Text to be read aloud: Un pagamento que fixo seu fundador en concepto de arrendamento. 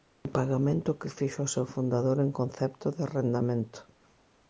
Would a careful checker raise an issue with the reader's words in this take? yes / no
yes